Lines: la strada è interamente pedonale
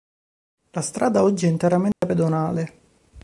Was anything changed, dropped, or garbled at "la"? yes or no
no